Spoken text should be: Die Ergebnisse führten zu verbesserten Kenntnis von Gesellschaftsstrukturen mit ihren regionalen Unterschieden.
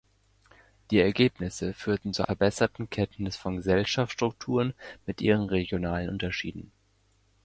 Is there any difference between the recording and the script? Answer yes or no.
no